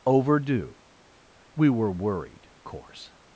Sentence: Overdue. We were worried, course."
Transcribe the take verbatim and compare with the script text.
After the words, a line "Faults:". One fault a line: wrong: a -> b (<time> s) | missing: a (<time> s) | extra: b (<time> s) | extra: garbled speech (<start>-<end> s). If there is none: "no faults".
Overdue. We were worried, course."
Faults:
no faults